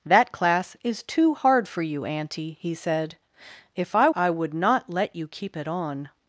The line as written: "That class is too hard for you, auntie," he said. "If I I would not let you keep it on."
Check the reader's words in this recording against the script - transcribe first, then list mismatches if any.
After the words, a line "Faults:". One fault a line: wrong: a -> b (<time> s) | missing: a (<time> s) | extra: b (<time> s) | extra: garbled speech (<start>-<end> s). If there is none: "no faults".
"That class is too hard for you, auntie," he said. "If I I would not let you keep it on."
Faults:
no faults